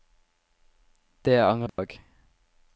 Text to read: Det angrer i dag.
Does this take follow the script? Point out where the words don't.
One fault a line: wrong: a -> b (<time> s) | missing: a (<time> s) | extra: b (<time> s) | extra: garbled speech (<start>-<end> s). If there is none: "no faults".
no faults